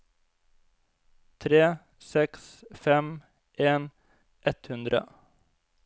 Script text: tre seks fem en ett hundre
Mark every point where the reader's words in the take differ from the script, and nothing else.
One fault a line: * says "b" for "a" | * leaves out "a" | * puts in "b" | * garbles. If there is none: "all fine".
all fine